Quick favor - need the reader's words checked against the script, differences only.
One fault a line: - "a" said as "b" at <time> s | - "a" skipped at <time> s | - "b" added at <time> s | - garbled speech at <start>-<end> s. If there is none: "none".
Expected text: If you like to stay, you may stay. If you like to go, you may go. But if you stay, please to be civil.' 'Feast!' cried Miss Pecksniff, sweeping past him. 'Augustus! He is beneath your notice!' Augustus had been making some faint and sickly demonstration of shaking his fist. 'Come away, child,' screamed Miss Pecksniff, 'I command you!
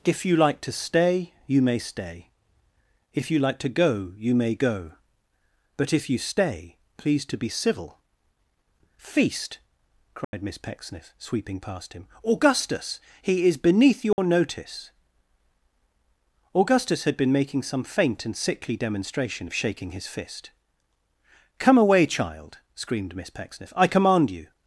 none